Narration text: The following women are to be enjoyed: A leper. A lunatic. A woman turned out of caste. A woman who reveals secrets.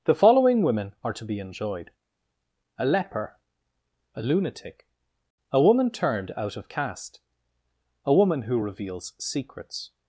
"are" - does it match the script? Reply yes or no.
yes